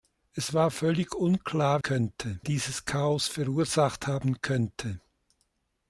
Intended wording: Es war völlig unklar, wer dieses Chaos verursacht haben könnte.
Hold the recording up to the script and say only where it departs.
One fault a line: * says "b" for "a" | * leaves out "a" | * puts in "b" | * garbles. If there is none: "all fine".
* says "könnte" for "wer"